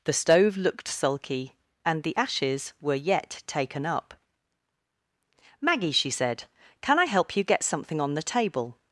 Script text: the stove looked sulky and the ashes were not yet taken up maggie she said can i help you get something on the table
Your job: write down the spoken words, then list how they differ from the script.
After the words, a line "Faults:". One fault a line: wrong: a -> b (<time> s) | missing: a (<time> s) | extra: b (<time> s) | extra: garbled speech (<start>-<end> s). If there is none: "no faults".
the stove looked sulky and the ashes were yet taken up maggie she said can i help you get something on the table
Faults:
missing: not (2.9 s)